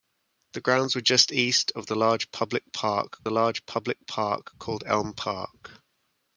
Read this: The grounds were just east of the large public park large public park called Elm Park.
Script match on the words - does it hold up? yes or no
yes